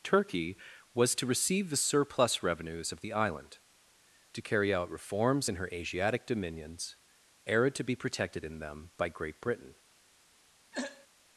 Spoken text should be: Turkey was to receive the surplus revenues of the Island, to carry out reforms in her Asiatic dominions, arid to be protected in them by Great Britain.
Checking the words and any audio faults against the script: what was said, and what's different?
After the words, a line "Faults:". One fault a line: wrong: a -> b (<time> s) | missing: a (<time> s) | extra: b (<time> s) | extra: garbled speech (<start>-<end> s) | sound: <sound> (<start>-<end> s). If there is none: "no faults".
Turkey was to receive the surplus revenues of the Island, to carry out reforms in her Asiatic dominions, era to be protected in them by Great Britain.
Faults:
wrong: arid -> era (7.4 s)
sound: throat clearing (10.7-11.1 s)